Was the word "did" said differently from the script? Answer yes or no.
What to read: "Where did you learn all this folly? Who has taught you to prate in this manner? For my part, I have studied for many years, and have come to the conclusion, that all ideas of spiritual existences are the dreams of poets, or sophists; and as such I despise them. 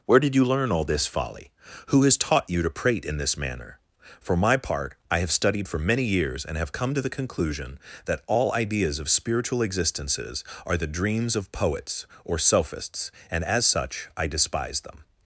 no